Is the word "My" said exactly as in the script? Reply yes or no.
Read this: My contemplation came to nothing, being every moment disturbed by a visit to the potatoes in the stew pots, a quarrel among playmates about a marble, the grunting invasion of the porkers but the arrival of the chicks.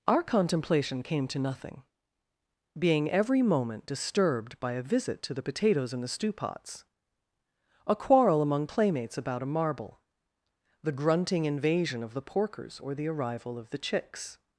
no